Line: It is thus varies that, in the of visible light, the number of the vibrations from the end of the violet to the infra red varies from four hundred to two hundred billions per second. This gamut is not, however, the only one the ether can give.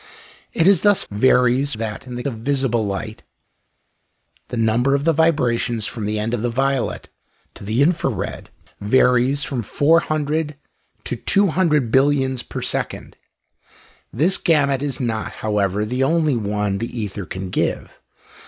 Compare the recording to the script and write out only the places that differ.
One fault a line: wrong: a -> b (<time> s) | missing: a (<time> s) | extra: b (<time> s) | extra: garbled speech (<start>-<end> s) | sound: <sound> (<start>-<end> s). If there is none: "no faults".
no faults